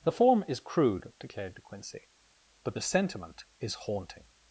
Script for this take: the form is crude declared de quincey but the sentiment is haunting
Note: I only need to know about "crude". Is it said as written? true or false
true